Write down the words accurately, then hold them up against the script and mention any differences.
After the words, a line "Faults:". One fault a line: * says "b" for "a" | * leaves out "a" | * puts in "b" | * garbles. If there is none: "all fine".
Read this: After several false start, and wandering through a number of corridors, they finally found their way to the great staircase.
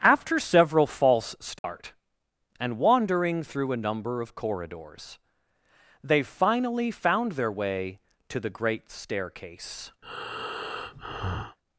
After several false start, and wandering through a number of corridors, they finally found their way to the great staircase.
Faults:
all fine